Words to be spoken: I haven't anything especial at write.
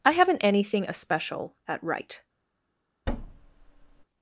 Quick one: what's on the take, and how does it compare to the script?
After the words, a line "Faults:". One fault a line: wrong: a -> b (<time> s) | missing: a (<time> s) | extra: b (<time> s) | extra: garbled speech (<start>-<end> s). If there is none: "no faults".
I haven't anything especial at write.
Faults:
no faults